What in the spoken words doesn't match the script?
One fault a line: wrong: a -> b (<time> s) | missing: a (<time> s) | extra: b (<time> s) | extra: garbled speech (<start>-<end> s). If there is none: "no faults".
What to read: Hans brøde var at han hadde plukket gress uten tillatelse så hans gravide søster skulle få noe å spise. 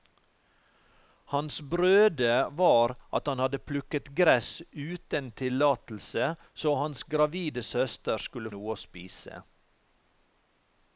missing: få (8.5 s)